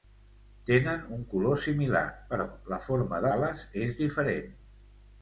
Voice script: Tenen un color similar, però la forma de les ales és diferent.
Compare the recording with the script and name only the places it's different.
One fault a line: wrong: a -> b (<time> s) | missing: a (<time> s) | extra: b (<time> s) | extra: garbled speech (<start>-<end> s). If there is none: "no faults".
missing: les (3.3 s)